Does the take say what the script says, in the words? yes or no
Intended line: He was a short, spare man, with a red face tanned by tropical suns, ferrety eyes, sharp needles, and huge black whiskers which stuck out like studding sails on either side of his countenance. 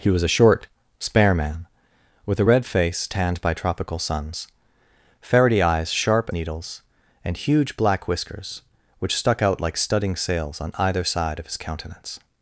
yes